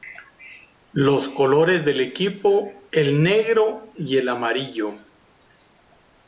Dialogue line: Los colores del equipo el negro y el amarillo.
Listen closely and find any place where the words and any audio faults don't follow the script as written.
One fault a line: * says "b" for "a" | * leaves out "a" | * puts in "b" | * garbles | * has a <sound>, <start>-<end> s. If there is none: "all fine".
all fine